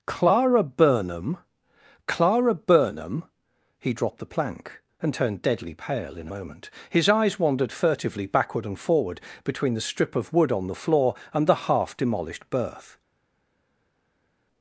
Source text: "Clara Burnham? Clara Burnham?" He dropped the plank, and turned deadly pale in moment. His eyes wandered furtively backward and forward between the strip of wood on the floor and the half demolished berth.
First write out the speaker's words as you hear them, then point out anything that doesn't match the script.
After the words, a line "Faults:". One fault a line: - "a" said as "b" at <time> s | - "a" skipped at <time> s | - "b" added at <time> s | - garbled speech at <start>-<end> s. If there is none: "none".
"Clara Burnham? Clara Burnham?" He dropped the plank, and turned deadly pale in moment. His eyes wandered furtively backward and forward between the strip of wood on the floor and the half demolished berth.
Faults:
none